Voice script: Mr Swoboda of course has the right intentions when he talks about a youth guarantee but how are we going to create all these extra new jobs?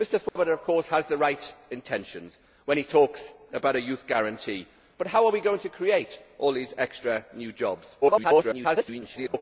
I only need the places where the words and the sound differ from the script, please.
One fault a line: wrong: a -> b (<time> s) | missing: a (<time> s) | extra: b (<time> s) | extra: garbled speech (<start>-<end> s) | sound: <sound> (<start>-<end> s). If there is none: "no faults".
sound: dropout (0.3-0.4 s)
extra: garbled speech (8.0-9.4 s)